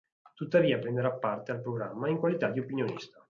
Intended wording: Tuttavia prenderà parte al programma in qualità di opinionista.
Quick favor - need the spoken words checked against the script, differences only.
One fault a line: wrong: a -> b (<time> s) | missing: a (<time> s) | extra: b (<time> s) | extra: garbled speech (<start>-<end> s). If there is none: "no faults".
no faults